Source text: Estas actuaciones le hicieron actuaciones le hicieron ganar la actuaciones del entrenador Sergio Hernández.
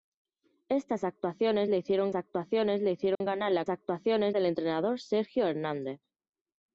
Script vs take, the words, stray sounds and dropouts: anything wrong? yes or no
yes